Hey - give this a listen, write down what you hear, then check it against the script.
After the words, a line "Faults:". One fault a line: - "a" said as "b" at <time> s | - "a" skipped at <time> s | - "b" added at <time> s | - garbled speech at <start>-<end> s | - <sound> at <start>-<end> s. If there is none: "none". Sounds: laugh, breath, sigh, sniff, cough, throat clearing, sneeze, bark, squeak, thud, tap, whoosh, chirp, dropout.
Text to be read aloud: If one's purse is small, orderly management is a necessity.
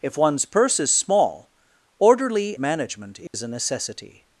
If one's purse is small, orderly management is a necessity.
Faults:
- dropout at 3.3-3.3 s